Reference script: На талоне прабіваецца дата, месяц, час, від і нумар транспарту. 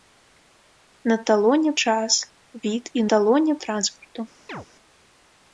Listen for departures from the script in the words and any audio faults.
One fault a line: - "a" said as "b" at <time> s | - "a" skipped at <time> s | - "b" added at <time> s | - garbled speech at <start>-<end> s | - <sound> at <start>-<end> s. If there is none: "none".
- "прабіваецца дата месяц" skipped at 1.7 s
- "нумар" said as "талоне" at 3.1 s
- chirp at 4.5-4.7 s